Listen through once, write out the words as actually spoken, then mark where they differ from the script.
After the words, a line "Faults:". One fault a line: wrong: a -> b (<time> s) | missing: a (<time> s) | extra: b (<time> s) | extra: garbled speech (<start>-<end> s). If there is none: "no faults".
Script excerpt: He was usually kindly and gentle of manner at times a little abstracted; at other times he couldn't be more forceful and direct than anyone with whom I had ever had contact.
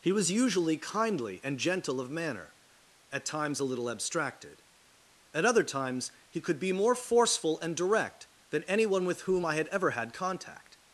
He was usually kindly and gentle of manner at times a little abstracted; at other times he could be more forceful and direct than anyone with whom I had ever had contact.
Faults:
wrong: couldn't -> could (6.4 s)